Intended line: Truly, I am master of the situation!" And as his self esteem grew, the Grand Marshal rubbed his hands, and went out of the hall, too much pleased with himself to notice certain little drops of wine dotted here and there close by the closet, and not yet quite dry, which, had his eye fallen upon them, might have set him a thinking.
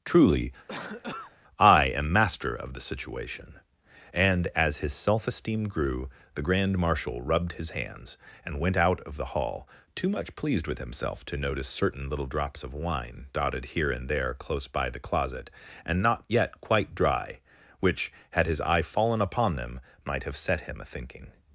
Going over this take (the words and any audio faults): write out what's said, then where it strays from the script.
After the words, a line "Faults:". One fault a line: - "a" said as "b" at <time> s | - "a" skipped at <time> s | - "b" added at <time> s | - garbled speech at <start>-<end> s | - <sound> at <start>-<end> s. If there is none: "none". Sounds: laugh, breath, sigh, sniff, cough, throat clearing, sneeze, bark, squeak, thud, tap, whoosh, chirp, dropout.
Truly, I am master of the situation!" And as his self esteem grew, the Grand Marshal rubbed his hands, and went out of the hall, too much pleased with himself to notice certain little drops of wine dotted here and there close by the closet, and not yet quite dry, which, had his eye fallen upon them, might have set him a thinking.
Faults:
- cough at 0.7-1.4 s